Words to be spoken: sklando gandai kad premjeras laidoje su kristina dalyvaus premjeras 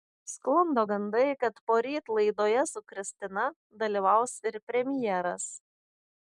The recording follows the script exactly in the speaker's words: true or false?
false